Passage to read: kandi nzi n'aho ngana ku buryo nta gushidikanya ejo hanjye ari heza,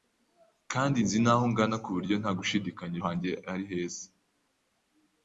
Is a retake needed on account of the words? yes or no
yes